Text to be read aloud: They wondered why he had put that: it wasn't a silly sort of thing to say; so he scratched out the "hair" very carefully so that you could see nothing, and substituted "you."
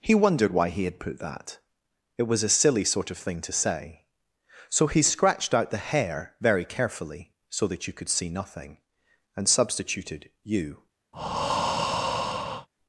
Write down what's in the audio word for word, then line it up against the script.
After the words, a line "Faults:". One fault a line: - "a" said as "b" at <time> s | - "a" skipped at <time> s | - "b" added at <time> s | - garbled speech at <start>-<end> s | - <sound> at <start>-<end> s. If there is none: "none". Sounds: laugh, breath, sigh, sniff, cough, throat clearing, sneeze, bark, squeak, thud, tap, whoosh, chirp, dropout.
He wondered why he had put that: it was a silly sort of thing to say; so he scratched out the "hair" very carefully so that you could see nothing, and substituted "you."
Faults:
- "They" said as "He" at 0.0 s
- "wasn't" said as "was" at 2.2 s
- breath at 11.1-12.7 s